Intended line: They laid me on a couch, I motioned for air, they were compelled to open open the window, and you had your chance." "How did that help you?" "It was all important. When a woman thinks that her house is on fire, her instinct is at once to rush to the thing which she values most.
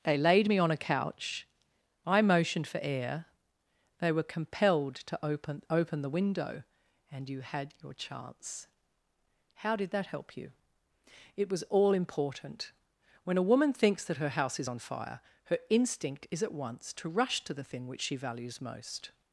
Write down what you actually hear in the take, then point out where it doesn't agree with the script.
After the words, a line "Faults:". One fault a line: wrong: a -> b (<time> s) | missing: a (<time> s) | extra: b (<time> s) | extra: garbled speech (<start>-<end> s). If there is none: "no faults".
They laid me on a couch, I motioned for air, they were compelled to open open the window, and you had your chance." "How did that help you?" "It was all important. When a woman thinks that her house is on fire, her instinct is at once to rush to the thing which she values most.
Faults:
no faults